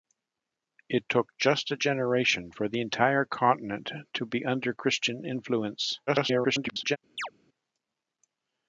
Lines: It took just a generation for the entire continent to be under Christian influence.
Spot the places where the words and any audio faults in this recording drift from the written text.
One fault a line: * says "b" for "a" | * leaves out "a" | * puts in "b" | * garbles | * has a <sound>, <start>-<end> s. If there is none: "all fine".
* garbles
* has a chirp, 7.2-7.3 s